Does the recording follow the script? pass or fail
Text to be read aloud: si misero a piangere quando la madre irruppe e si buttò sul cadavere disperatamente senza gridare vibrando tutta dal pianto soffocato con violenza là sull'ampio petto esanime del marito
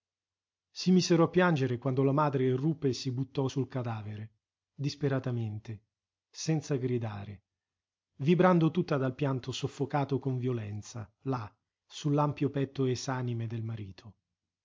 pass